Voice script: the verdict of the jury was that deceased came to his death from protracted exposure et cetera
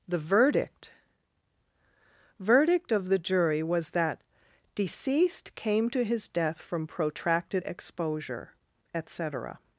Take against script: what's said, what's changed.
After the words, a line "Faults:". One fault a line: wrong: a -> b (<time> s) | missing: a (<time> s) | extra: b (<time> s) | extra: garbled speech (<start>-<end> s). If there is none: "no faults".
the verdict verdict of the jury was that deceased came to his death from protracted exposure et cetera
Faults:
extra: verdict (2.4 s)